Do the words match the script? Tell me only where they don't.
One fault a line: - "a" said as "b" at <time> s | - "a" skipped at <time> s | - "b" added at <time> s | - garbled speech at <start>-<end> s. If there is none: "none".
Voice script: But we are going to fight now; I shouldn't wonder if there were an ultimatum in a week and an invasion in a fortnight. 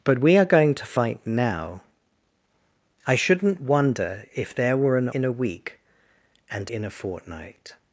- "ultimatum" skipped at 5.1 s
- "an invasion" skipped at 6.7 s